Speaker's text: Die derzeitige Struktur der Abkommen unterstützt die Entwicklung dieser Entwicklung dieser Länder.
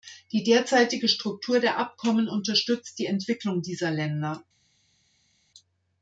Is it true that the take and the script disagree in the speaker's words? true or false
true